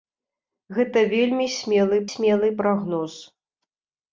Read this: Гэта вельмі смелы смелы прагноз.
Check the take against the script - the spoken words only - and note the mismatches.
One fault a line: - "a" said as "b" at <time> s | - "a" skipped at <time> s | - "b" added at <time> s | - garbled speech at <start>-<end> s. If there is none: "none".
none